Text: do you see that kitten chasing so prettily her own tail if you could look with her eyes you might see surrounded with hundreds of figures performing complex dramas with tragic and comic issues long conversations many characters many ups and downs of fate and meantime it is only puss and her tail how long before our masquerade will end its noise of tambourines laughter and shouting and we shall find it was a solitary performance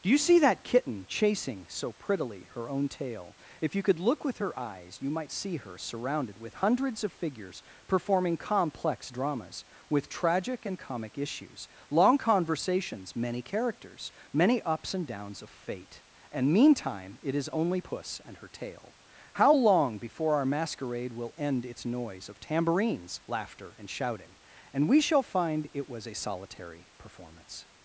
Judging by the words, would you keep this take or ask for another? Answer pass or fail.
fail